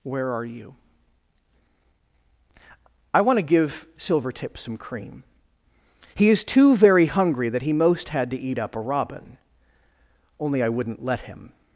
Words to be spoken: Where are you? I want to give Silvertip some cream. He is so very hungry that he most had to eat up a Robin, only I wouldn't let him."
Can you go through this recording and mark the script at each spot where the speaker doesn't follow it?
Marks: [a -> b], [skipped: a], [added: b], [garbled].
Where are you? I want to give Silvertip some cream. He is [so -> too] very hungry that he most had to eat up a Robin, only I wouldn't let him."